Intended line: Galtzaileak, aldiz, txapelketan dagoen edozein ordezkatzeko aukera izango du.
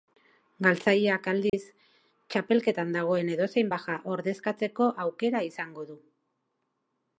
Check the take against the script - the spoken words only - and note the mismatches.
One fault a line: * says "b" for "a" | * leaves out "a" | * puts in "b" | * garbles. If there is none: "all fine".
* puts in "baja"